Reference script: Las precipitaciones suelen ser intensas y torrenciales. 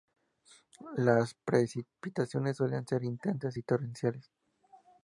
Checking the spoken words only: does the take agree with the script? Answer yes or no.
yes